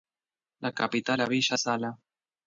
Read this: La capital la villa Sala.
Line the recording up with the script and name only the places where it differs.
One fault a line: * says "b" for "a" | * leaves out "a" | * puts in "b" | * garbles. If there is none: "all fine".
all fine